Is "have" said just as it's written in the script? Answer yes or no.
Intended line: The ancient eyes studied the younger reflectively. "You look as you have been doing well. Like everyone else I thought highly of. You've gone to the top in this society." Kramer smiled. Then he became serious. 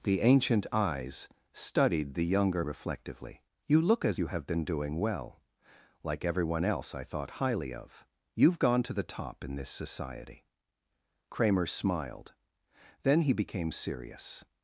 yes